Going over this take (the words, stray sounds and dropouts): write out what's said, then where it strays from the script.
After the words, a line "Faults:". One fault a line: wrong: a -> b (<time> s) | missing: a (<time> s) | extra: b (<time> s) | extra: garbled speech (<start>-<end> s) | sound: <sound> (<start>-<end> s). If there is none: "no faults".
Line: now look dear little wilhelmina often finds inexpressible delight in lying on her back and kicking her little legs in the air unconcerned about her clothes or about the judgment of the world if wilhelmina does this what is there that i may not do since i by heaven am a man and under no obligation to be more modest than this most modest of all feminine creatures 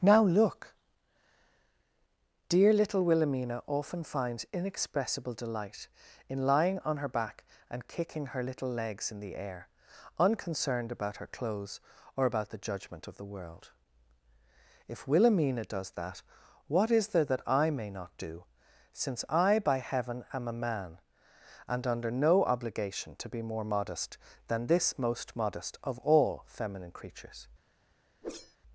now look dear little wilhelmina often finds inexpressible delight in lying on her back and kicking her little legs in the air unconcerned about her clothes or about the judgment of the world if wilhelmina does that what is there that i may not do since i by heaven am a man and under no obligation to be more modest than this most modest of all feminine creatures
Faults:
wrong: this -> that (15.9 s)
sound: whoosh (28.2-28.6 s)